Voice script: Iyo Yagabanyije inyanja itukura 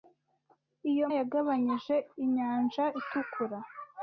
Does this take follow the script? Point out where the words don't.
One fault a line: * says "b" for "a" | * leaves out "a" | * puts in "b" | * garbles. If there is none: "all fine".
all fine